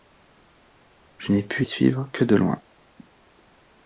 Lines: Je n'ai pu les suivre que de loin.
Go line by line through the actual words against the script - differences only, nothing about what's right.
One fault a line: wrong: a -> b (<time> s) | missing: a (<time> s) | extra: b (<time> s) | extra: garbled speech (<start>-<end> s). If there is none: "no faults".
missing: les (1.6 s)